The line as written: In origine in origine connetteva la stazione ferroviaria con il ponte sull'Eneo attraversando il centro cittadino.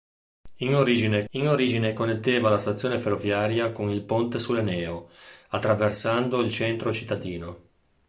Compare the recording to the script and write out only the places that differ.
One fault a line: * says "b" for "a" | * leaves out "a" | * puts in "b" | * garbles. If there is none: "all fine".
all fine